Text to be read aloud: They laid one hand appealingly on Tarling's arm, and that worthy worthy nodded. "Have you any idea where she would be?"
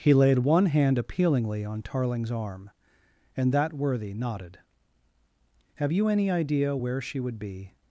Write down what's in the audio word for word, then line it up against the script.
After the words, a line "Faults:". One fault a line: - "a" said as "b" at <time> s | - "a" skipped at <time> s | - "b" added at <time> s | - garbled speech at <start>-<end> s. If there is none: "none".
He laid one hand appealingly on Tarling's arm, and that worthy nodded. "Have you any idea where she would be?"
Faults:
- "They" said as "He" at 0.0 s
- "worthy" skipped at 4.2 s